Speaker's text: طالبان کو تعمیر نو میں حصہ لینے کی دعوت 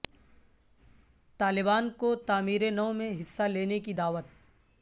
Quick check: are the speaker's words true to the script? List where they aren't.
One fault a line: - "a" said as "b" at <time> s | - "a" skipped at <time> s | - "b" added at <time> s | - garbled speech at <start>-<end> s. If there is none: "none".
none